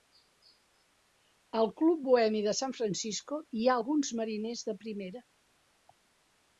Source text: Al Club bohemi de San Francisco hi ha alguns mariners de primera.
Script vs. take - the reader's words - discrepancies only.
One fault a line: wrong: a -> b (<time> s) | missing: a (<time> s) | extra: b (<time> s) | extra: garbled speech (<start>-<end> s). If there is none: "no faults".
no faults